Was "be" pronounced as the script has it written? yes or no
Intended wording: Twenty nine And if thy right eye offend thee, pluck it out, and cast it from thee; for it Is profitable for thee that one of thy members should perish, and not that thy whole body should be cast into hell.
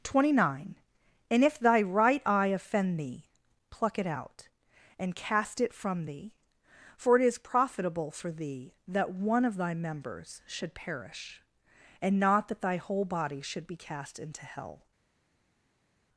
yes